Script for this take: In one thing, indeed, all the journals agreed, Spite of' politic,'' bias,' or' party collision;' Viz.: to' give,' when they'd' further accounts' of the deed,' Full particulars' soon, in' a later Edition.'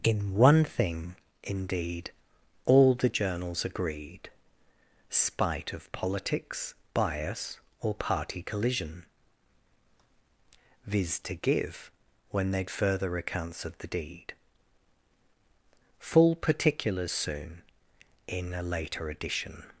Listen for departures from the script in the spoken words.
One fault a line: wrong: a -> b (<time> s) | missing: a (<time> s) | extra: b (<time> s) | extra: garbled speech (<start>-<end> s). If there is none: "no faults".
wrong: politic -> politics (5.9 s)